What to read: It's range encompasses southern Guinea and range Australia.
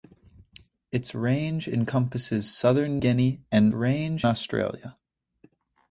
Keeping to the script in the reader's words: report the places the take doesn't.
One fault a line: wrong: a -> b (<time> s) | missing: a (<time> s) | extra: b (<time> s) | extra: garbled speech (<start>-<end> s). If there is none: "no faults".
no faults